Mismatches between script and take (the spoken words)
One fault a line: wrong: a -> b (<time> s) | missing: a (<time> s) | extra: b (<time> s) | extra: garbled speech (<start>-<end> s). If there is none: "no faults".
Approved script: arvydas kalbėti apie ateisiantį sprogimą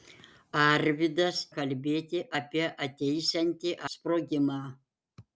no faults